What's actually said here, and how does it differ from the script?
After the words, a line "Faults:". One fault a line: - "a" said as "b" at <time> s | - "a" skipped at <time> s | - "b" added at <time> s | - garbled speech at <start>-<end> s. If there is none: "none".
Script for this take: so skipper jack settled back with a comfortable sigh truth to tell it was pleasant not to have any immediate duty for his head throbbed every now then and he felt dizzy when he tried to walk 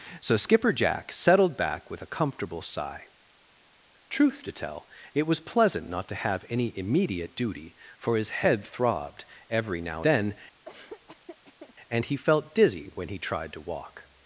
so skipper jack settled back with a comfortable sigh truth to tell it was pleasant not to have any immediate duty for his head throbbed every now then and he felt dizzy when he tried to walk
Faults:
none